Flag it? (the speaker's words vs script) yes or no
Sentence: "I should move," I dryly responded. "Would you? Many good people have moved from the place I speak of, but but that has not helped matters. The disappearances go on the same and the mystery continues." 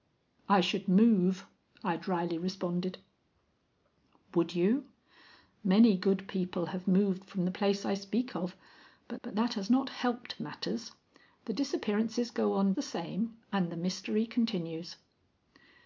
no